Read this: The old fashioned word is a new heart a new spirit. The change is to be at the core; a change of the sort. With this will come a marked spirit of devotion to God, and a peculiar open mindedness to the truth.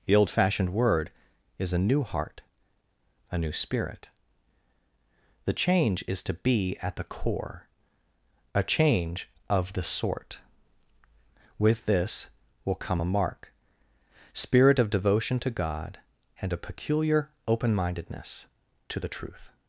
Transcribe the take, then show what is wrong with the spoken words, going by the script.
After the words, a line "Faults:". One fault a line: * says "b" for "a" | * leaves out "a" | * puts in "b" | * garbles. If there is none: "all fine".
The old fashioned word is a new heart a new spirit. The change is to be at the core; a change of the sort. With this will come a mark spirit of devotion to God, and a peculiar open mindedness to the truth.
Faults:
* says "mark" for "marked"